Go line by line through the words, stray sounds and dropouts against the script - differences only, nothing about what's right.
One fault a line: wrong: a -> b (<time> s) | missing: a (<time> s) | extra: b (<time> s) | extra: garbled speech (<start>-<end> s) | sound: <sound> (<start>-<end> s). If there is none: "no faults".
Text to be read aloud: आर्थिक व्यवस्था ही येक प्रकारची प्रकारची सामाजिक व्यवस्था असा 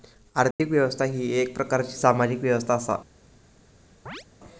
sound: dropout (0.5-0.6 s)
missing: प्रकारची (1.9 s)
sound: chirp (4.1-4.2 s)